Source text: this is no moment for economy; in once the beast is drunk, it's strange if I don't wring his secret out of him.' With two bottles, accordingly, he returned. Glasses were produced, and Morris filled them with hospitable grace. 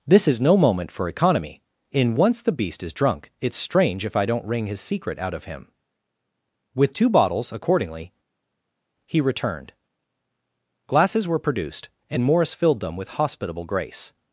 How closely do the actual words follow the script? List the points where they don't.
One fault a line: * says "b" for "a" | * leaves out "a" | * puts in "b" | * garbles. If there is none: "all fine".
all fine